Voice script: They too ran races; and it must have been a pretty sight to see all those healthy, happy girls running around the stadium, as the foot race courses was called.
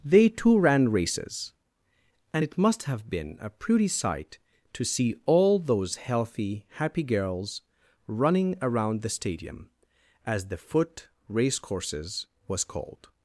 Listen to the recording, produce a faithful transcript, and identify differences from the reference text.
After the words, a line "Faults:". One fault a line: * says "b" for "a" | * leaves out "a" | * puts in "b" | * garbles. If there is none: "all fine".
They too ran races; and it must have been a pretty sight to see all those healthy, happy girls running around the stadium, as the foot race courses was called.
Faults:
all fine